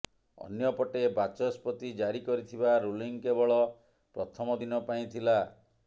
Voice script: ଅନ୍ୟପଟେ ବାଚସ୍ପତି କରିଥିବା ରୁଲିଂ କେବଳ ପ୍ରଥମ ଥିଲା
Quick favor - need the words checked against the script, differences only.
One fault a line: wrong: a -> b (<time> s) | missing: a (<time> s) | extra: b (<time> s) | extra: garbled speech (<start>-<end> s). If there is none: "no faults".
extra: ଜାରି (2.0 s)
extra: ଦିନ ପାଇଁ (4.6 s)